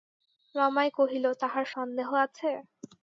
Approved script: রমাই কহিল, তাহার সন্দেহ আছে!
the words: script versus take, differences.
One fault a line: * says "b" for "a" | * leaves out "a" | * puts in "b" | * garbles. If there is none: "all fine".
all fine